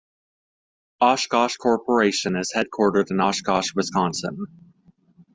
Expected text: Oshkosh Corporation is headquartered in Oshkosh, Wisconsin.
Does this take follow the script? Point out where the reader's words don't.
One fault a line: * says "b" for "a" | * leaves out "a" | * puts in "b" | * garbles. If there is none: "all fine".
all fine